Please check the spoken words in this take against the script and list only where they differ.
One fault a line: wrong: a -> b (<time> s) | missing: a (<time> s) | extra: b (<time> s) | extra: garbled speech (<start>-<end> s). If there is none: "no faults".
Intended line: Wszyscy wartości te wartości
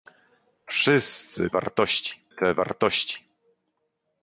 no faults